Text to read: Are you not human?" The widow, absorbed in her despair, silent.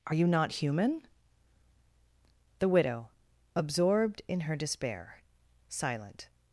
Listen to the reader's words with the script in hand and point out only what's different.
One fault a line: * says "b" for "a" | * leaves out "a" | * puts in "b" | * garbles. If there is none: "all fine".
all fine